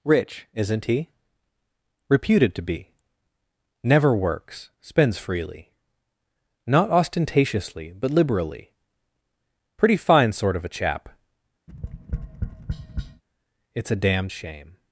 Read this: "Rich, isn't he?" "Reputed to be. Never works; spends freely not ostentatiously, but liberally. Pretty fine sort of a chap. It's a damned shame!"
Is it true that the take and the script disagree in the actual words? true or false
false